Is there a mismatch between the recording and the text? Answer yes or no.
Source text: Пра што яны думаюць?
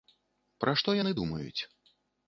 no